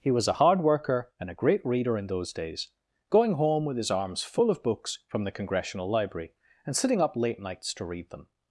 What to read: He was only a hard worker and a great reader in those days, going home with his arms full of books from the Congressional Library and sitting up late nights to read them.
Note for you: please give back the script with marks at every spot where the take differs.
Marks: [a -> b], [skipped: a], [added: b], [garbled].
He was [skipped: only] a hard worker and a great reader in those days, going home with his arms full of books from the Congressional Library and sitting up late nights to read them.